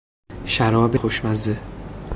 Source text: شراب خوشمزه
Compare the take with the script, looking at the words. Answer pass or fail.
pass